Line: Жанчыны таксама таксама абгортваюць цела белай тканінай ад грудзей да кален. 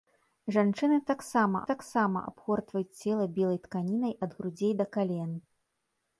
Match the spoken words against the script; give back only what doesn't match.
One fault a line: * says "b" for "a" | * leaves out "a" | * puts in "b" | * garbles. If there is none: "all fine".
all fine